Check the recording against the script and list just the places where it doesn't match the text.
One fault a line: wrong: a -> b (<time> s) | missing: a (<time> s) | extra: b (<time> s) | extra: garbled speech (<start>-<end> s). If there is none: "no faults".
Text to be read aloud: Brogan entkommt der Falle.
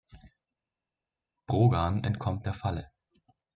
no faults